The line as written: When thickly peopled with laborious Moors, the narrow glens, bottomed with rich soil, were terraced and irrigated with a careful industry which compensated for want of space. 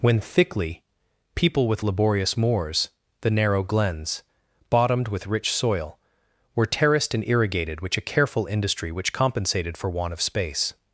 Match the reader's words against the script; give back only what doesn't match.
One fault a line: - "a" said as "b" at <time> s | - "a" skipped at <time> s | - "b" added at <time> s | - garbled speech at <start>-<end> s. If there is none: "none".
- "peopled" said as "people" at 1.4 s
- "with" said as "which" at 7.8 s